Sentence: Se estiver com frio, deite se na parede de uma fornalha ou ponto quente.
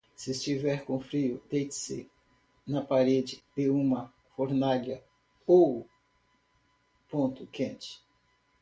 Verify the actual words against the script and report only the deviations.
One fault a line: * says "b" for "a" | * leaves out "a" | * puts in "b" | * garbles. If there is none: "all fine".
all fine